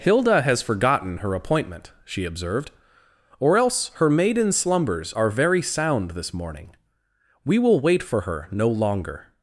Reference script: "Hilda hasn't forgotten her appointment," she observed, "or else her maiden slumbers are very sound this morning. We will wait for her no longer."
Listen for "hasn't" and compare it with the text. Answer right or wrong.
wrong